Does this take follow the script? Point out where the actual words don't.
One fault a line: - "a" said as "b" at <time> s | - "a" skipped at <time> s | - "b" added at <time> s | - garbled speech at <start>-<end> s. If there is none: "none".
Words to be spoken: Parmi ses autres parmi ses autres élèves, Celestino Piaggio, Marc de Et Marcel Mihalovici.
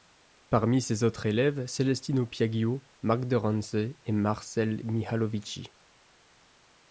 - "parmi ses autres" skipped at 1.3 s
- "Ranse" added at 3.4 s